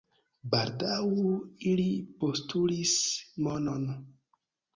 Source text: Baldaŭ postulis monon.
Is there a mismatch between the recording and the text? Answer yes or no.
yes